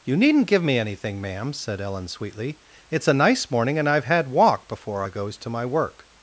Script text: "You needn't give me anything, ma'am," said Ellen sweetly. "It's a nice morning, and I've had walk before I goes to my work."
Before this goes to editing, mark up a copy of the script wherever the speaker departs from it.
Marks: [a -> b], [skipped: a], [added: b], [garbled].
"You needn't give me anything, ma'am," said Ellen sweetly. "It's a nice morning, and I've had walk before I goes to my work."